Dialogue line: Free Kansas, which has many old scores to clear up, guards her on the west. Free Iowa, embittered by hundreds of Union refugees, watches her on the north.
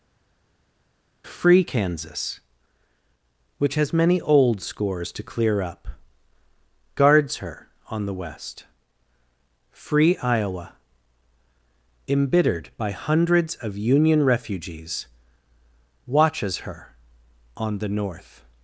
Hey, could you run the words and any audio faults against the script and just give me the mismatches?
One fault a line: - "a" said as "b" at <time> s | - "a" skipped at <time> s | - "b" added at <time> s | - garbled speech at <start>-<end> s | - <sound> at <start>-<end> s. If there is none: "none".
none